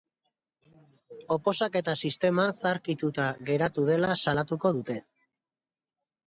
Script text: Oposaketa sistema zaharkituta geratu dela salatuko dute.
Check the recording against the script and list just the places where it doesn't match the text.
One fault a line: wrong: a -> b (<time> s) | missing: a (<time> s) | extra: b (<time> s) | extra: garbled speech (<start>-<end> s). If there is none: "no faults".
no faults